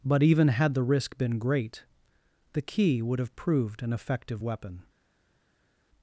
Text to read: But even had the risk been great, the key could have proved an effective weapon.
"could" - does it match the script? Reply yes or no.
no